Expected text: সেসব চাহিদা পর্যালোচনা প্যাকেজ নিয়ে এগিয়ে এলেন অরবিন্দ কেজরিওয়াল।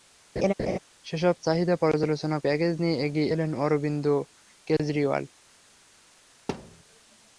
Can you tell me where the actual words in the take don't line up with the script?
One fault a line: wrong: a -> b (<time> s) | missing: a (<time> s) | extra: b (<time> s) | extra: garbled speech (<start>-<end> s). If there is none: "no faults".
no faults